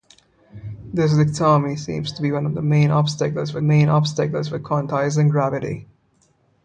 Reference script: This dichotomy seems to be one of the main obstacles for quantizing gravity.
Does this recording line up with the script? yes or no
no